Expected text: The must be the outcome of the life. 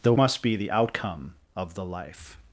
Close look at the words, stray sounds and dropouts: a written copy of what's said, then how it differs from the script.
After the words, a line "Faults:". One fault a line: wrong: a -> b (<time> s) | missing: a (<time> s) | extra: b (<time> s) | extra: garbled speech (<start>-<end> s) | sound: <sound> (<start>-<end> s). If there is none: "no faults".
The must be the outcome of the life.
Faults:
no faults